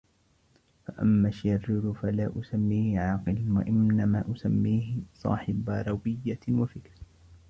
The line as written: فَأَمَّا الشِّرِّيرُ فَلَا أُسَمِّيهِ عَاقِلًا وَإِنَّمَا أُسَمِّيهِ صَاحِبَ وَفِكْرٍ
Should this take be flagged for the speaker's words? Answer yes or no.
yes